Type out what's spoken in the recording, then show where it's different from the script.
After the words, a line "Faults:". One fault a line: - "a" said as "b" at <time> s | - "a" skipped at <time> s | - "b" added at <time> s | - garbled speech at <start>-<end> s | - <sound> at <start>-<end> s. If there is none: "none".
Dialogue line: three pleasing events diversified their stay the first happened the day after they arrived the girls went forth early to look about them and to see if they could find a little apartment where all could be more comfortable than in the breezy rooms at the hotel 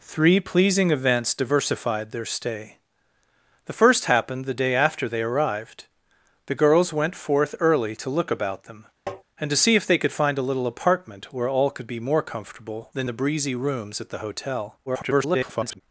three pleasing events diversified their stay the first happened the day after they arrived the girls went forth early to look about them and to see if they could find a little apartment where all could be more comfortable than the breezy rooms at the hotel [garbled]
Faults:
- tap at 9.1-9.2 s
- "in" skipped at 13.1 s
- garbled speech at 14.9-15.8 s